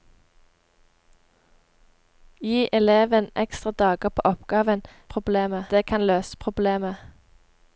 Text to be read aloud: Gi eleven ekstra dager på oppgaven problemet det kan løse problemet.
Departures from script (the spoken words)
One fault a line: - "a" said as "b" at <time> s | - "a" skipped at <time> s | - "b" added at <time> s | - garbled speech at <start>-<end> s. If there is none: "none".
none